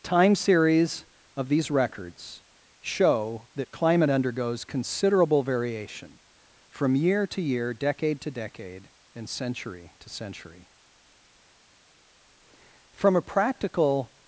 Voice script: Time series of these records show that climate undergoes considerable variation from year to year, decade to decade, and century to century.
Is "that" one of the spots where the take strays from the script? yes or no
no